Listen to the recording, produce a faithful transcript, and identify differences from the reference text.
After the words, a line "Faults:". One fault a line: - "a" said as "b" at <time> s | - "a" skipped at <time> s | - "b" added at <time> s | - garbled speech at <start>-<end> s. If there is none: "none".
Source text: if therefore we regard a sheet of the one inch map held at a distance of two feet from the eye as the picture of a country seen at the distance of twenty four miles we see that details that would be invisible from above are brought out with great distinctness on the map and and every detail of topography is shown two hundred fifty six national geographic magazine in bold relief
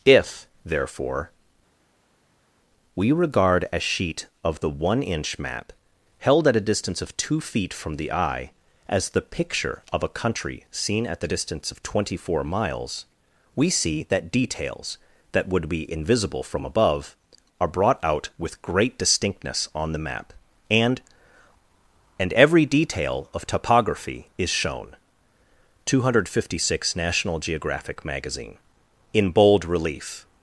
if therefore we regard a sheet of the one inch map held at a distance of two feet from the eye as the picture of a country seen at the distance of twenty four miles we see that details that would be invisible from above are brought out with great distinctness on the map and and every detail of topography is shown two hundred fifty six national geographic magazine in bold relief
Faults:
none